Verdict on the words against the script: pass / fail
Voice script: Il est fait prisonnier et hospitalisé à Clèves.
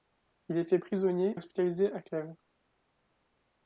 fail